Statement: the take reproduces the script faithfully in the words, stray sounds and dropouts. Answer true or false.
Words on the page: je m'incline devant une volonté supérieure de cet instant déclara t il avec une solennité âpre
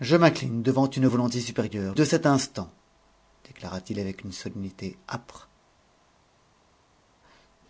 true